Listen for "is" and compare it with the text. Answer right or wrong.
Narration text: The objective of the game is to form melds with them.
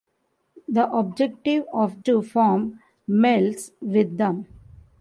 wrong